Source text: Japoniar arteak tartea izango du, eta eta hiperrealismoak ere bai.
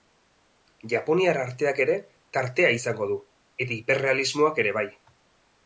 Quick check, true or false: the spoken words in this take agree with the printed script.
false